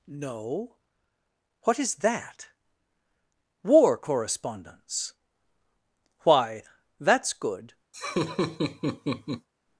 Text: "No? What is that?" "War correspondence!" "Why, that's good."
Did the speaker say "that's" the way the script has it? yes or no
yes